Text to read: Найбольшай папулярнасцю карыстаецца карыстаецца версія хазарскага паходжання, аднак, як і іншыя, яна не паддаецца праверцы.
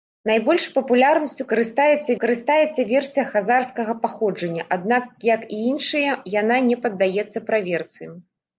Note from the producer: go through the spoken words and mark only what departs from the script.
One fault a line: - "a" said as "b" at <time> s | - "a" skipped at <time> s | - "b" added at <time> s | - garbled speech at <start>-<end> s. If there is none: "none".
none